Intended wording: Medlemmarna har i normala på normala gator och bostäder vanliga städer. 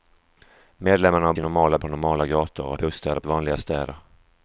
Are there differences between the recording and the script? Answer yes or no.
no